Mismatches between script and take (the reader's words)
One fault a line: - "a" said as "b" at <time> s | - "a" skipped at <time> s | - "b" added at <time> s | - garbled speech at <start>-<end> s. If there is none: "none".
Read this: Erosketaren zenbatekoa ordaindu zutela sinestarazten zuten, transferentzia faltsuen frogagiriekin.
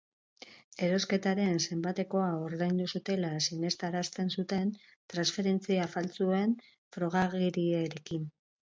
none